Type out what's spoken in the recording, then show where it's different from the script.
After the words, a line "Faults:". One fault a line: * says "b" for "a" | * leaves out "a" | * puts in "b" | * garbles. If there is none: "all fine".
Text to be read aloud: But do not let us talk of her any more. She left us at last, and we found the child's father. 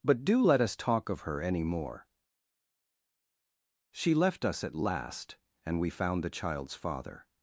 But do let us talk of her any more. She left us at last, and we found the child's father.
Faults:
* leaves out "not"